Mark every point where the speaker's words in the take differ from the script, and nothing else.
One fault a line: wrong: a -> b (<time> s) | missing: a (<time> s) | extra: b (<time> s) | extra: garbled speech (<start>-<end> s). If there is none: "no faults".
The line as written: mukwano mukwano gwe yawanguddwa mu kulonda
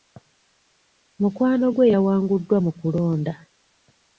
missing: mukwano (1.6 s)